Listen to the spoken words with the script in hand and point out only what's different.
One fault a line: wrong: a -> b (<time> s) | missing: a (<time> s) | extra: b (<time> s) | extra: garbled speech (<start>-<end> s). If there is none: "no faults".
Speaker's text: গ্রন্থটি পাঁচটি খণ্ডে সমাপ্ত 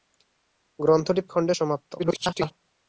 missing: পাঁচটি (1.2 s)
extra: garbled speech (2.0-2.5 s)